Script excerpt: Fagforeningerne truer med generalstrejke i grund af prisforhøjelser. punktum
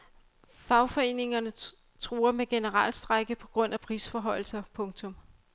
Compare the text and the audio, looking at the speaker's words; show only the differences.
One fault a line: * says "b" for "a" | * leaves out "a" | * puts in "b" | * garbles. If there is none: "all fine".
* says "på" for "i"